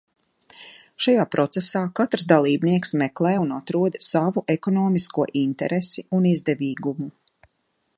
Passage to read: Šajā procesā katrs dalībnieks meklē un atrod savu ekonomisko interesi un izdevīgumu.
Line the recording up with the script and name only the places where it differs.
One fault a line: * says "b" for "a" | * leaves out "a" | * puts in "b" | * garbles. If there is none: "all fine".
all fine